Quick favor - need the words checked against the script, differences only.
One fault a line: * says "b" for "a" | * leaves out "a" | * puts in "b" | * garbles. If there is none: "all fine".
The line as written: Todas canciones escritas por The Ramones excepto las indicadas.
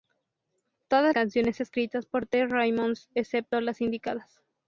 all fine